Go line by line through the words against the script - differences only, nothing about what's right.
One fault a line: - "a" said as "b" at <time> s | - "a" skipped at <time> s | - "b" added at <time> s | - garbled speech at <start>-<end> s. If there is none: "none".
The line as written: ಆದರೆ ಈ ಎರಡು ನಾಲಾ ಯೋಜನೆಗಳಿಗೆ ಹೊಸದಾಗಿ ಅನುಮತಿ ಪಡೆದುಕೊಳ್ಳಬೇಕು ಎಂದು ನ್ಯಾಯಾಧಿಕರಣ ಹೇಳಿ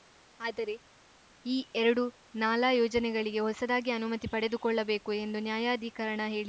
none